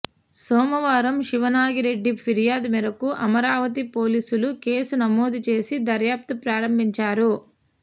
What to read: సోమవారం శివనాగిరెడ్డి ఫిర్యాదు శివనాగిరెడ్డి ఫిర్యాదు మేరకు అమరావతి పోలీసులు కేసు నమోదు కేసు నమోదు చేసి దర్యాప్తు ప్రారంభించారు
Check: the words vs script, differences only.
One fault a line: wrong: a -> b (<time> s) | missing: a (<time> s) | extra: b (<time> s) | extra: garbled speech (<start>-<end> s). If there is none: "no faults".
missing: శివనాగిరెడ్డి ఫిర్యాదు (2.7 s)
missing: కేసు నమోదు (5.4 s)